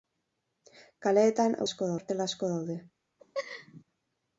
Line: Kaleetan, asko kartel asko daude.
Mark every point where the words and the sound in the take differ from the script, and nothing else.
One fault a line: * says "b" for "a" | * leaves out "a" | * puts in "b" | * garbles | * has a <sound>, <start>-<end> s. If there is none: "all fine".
* has a laugh, 3.2-3.8 s